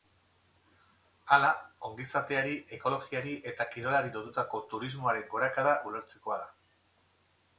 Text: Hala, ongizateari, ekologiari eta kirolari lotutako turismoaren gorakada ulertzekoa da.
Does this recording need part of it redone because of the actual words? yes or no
no